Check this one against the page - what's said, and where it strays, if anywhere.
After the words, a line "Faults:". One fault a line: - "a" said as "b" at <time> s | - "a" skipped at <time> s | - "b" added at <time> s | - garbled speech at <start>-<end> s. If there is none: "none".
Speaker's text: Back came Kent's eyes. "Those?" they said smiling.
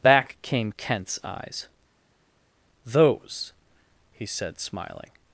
Back came Kent's eyes. "Those?" he said smiling.
Faults:
- "they" said as "he" at 4.1 s